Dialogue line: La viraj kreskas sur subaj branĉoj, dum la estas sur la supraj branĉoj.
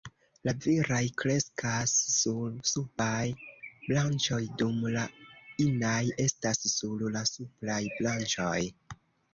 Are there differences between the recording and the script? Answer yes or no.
yes